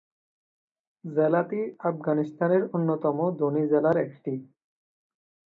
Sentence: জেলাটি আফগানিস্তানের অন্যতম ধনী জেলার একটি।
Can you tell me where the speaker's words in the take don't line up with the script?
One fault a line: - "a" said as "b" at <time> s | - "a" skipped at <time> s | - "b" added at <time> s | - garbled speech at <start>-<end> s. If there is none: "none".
none